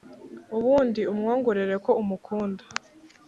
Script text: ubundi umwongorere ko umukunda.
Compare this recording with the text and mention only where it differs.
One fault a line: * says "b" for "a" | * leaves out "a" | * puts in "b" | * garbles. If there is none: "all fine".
all fine